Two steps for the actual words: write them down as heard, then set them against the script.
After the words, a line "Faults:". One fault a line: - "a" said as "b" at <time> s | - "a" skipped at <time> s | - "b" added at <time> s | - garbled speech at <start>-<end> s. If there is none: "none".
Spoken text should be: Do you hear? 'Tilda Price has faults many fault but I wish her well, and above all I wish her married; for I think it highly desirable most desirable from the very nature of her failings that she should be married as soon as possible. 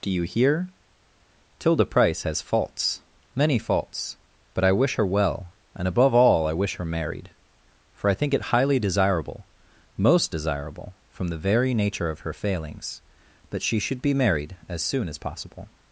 Do you hear? 'Tilda Price has faults many faults but I wish her well, and above all I wish her married; for I think it highly desirable most desirable from the very nature of her failings that she should be married as soon as possible.
Faults:
- "fault" said as "faults" at 3.6 s